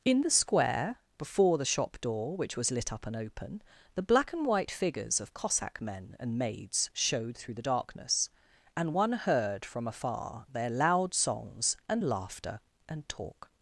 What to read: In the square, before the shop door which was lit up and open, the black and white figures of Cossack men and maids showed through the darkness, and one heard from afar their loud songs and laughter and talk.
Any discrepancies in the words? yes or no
no